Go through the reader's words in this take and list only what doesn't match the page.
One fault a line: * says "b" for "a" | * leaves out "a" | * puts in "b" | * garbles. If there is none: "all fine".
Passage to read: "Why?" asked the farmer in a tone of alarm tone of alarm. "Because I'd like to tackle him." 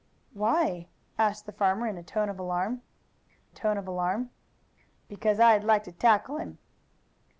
all fine